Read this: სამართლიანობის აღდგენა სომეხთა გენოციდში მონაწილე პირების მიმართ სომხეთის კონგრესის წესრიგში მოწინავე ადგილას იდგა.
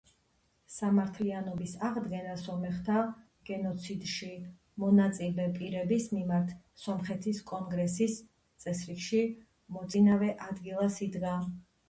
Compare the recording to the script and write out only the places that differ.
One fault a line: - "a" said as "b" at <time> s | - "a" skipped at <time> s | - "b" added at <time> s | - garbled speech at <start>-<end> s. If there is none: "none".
none